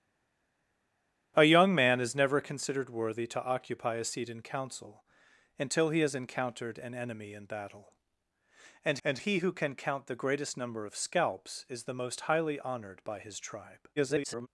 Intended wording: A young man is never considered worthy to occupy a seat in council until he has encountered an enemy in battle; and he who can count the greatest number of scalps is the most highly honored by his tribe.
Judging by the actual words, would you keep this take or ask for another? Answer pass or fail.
fail